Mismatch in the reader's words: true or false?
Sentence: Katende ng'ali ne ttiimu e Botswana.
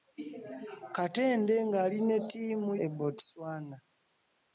false